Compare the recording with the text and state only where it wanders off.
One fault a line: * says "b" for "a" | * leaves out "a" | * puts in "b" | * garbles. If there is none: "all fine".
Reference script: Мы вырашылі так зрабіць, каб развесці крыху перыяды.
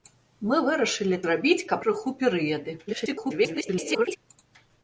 * leaves out "так"
* leaves out "развесці"
* garbles